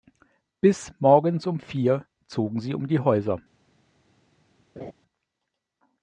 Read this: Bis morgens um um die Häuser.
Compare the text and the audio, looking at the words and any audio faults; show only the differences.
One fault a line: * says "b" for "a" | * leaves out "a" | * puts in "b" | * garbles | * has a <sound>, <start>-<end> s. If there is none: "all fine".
* puts in "vier zogen sie"
* has a laugh, 4.8-4.9 s